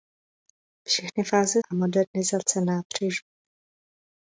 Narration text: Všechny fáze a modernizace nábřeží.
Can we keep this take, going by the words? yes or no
yes